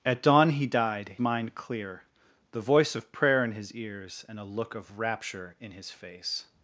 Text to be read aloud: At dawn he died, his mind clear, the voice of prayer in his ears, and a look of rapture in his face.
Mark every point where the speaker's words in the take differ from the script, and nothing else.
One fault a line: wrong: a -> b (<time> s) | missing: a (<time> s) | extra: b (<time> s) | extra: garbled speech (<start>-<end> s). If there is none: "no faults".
missing: his (1.1 s)